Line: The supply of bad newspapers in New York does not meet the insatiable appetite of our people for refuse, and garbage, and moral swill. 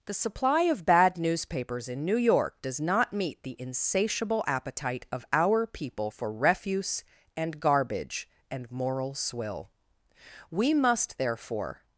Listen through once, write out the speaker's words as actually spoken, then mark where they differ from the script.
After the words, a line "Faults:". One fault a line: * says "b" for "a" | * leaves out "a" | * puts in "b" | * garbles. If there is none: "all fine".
The supply of bad newspapers in New York does not meet the insatiable appetite of our people for refuse, and garbage, and moral swill. We must, therefore
Faults:
* puts in "We must therefore"